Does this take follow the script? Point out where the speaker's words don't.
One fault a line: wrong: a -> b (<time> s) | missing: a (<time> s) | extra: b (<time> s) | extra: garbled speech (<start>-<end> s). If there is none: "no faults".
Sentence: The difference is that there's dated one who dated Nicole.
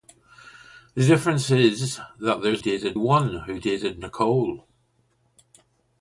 no faults